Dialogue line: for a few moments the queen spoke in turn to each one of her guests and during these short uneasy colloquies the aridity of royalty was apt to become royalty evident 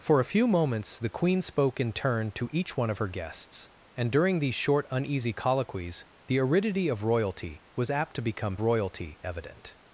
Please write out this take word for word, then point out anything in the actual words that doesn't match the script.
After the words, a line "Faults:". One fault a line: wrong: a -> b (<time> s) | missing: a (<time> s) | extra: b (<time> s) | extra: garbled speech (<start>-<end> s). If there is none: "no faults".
for a few moments the queen spoke in turn to each one of her guests and during these short uneasy colloquies the aridity of royalty was apt to become royalty evident
Faults:
no faults